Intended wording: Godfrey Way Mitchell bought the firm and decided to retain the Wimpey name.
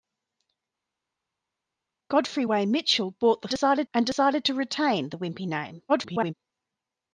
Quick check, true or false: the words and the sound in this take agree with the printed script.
false